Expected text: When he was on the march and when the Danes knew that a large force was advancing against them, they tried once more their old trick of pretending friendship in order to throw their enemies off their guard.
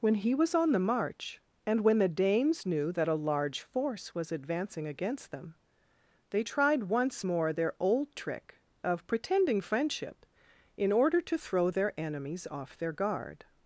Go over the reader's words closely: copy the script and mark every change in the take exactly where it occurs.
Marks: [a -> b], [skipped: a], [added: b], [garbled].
When he was on the march and when the Danes knew that a large force was advancing against them, they tried once more their old trick of pretending friendship in order to throw their enemies off their guard.